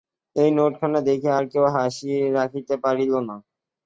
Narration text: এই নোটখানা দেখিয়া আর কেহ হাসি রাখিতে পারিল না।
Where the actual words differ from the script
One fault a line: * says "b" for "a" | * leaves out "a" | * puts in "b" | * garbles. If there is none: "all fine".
all fine